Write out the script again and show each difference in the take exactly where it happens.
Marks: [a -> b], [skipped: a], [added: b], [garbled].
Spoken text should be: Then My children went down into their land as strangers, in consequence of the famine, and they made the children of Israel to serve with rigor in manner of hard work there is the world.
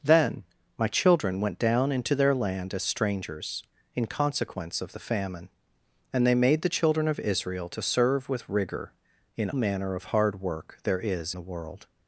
Then My children went down into their land as strangers, in consequence of the famine, and they made the children of Israel to serve with rigor in manner of hard work there is the world.